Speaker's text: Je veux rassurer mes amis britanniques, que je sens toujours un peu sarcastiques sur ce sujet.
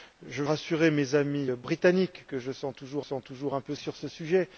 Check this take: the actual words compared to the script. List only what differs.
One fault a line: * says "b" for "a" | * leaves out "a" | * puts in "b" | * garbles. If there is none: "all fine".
* leaves out "veux"
* puts in "sens toujours"
* leaves out "sarcastiques"